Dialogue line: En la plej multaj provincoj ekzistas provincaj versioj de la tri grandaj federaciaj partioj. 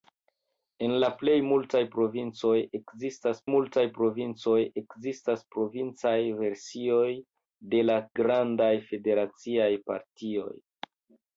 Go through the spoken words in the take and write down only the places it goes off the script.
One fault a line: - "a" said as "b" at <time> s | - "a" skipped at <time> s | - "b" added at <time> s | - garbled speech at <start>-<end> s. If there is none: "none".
- "multaj provincoj ekzistas" added at 3.5 s
- "tri" skipped at 8.0 s